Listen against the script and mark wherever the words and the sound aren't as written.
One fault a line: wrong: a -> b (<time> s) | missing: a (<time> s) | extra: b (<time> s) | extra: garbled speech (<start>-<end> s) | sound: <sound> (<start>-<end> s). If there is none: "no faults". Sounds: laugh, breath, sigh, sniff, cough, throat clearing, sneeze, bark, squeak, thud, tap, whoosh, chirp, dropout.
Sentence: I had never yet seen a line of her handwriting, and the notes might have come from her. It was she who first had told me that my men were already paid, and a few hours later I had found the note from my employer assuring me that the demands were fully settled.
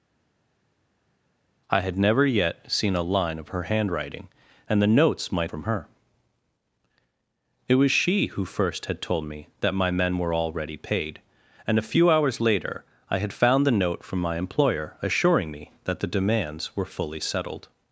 missing: have come (5.5 s)